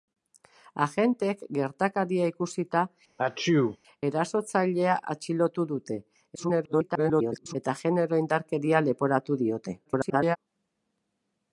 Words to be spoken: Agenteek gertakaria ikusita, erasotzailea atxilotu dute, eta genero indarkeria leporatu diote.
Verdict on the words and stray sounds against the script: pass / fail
fail